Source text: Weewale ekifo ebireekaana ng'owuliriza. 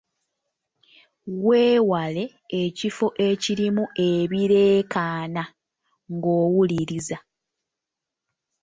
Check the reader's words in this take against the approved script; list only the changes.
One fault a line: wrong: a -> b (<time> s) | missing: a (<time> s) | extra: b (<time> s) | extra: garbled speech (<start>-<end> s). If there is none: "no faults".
extra: ekirimu (3.3 s)